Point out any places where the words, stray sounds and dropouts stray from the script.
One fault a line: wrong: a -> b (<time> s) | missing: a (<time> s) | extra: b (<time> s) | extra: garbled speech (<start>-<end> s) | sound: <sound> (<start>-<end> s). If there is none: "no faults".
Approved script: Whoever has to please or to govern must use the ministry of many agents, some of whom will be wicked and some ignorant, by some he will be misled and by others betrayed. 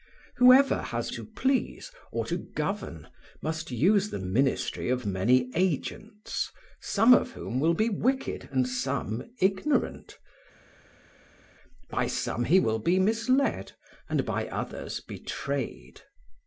no faults